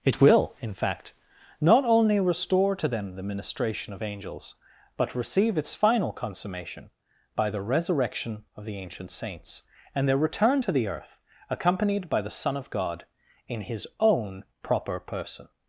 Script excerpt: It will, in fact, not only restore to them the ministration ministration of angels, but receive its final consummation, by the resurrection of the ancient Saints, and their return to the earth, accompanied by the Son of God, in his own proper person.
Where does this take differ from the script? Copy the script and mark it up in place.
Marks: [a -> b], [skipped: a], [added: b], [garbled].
It will, in fact, not only restore to them the ministration [skipped: ministration] of angels, but receive its final consummation, by the resurrection of the ancient Saints, and their return to the earth, accompanied by the Son of God, in his own proper person.